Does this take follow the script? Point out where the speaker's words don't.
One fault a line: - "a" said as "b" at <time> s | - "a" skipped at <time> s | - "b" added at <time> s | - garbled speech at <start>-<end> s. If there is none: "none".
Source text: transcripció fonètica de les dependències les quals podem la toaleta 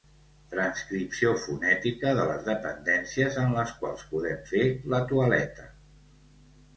- "en" added at 3.4 s
- "fer" added at 4.5 s